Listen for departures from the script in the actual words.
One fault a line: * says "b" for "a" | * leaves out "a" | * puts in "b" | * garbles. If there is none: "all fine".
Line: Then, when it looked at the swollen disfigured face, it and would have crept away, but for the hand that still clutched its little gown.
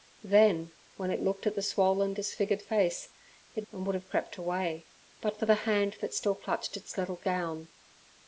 all fine